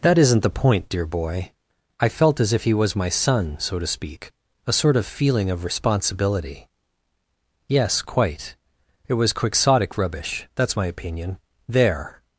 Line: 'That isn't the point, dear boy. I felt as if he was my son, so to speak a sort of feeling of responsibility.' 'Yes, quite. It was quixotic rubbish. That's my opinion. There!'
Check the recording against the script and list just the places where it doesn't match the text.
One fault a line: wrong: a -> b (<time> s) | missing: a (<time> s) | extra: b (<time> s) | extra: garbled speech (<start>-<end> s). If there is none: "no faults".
no faults